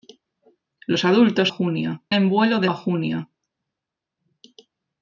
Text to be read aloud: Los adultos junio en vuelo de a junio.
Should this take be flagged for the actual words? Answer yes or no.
no